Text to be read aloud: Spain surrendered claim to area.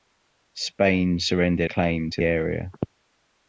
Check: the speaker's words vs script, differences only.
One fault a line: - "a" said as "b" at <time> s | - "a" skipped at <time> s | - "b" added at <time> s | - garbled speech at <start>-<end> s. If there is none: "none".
none